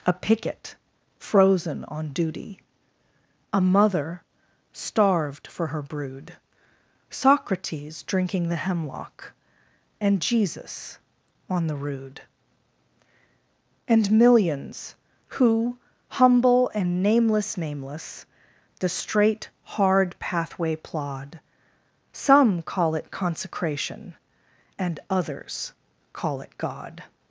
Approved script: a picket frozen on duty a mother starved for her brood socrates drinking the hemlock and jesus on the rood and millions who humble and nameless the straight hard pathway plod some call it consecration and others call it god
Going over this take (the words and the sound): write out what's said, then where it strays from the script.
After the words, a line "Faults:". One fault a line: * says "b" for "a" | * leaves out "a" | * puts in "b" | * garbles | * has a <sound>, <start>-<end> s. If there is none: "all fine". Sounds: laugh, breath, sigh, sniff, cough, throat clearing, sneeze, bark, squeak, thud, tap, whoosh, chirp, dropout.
a picket frozen on duty a mother starved for her brood socrates drinking the hemlock and jesus on the rood and millions who humble and nameless nameless the straight hard pathway plod some call it consecration and others call it god
Faults:
* puts in "nameless"